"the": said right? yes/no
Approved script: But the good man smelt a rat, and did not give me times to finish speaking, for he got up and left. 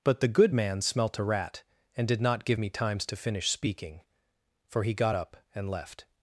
yes